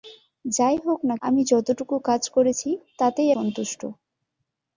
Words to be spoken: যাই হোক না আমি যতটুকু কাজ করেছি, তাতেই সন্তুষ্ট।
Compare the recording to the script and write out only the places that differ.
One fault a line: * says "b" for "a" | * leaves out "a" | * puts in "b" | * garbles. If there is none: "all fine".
all fine